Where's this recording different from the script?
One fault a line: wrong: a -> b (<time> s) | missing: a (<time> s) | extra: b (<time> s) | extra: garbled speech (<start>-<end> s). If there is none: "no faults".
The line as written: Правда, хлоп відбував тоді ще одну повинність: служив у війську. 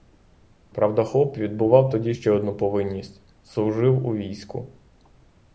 no faults